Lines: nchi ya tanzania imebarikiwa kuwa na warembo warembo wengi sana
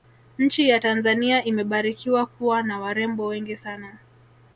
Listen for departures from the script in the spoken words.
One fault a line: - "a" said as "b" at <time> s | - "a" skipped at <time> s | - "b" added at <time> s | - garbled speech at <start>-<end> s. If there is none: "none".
- "warembo" skipped at 3.3 s